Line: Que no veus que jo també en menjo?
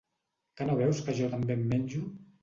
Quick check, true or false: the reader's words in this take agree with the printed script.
true